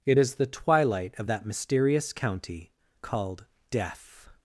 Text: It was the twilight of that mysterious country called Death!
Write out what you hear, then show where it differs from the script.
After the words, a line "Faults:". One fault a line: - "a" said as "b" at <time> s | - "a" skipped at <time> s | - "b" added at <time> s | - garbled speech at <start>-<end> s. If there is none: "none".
It is the twilight of that mysterious county called Death!
Faults:
- "was" said as "is" at 0.2 s
- "country" said as "county" at 2.1 s